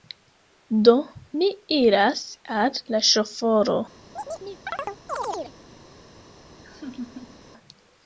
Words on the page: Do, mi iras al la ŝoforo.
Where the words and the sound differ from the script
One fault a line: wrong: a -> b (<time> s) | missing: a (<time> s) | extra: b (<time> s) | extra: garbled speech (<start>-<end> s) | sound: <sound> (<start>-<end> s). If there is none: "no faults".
sound: chirp (4.1-5.5 s)
sound: laugh (6.6-7.4 s)